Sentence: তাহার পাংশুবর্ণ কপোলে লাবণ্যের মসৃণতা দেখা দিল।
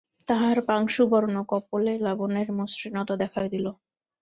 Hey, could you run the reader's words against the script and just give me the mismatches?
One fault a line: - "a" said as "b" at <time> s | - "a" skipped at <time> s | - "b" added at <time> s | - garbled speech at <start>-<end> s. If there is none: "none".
none